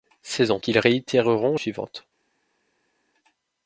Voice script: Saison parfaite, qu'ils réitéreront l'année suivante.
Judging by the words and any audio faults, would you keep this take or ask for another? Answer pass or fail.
fail